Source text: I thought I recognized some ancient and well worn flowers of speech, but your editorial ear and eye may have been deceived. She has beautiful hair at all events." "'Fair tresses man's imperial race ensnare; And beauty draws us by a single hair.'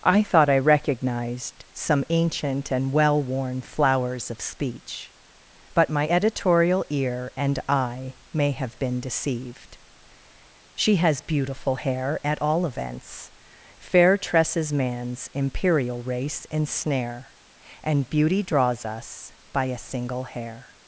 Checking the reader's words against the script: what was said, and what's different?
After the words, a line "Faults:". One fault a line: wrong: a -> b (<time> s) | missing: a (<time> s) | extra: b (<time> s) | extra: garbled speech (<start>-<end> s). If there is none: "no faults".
I thought I recognized some ancient and well worn flowers of speech, but my editorial ear and eye may have been deceived. She has beautiful hair at all events." "'Fair tresses man's imperial race ensnare; And beauty draws us by a single hair.'
Faults:
wrong: your -> my (5.9 s)